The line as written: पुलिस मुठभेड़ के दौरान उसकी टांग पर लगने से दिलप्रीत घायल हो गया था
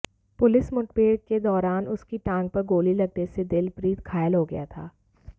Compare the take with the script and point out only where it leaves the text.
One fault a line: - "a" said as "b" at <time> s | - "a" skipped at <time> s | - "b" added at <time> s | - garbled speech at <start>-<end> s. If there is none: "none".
- "गोली" added at 2.7 s